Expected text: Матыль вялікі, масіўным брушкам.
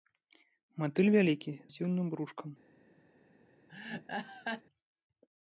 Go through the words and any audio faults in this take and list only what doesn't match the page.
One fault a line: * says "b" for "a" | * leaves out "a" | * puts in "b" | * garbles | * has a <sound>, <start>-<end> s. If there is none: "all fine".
* has a laugh, 3.7-4.6 s